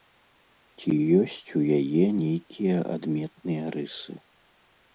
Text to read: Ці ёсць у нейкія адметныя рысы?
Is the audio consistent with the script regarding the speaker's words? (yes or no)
no